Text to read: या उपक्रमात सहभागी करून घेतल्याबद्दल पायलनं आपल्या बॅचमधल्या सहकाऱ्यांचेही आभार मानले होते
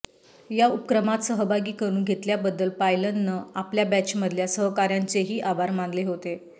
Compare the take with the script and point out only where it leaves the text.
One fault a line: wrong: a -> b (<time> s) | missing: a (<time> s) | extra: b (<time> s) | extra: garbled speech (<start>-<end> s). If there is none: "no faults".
no faults